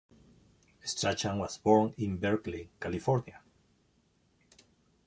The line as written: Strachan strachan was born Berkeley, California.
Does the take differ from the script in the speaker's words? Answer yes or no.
yes